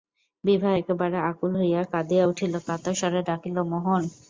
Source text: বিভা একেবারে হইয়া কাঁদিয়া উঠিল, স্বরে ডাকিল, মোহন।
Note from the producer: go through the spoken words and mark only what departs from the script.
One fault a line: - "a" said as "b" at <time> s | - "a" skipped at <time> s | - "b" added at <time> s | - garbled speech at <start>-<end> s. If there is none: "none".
- "আকুল" added at 1.3 s
- "কাতর" added at 2.7 s